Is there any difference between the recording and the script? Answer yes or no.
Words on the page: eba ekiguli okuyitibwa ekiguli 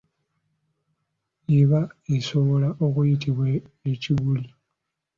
yes